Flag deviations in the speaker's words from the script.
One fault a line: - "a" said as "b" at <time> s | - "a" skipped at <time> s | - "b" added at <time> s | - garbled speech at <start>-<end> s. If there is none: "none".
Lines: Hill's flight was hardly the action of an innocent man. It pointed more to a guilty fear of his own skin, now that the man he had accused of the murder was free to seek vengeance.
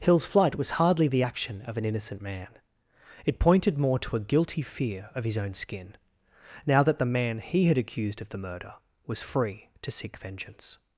none